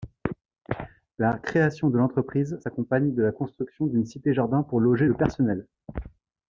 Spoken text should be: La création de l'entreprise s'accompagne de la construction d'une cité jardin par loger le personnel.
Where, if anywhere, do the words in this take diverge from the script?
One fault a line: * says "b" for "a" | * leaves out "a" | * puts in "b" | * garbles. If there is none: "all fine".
* says "pour" for "par"